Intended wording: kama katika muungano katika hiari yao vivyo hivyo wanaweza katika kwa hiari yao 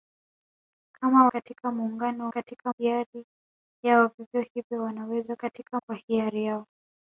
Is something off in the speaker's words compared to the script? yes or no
no